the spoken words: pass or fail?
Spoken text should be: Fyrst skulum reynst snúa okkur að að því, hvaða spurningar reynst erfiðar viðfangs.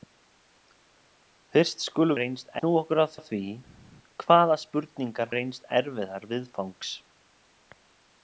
pass